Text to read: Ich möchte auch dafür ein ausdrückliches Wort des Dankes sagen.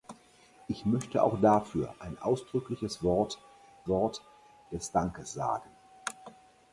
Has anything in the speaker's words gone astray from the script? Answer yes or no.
yes